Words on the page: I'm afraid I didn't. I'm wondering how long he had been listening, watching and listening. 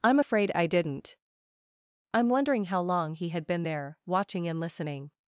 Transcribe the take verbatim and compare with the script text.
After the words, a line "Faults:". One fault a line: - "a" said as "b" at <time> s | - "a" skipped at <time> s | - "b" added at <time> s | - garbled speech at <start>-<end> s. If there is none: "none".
I'm afraid I didn't. I'm wondering how long he had been there, watching and listening.
Faults:
- "listening" said as "there" at 3.6 s